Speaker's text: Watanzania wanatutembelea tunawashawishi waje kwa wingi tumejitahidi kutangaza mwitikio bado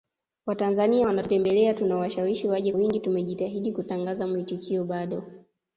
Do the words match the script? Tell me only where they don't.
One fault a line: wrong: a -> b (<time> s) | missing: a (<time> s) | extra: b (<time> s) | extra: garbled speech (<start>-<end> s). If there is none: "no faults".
missing: kwa (2.7 s)